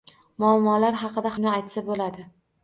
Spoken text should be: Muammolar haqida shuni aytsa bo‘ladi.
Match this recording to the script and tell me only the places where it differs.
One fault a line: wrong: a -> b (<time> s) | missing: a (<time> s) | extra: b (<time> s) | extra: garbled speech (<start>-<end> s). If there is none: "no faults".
no faults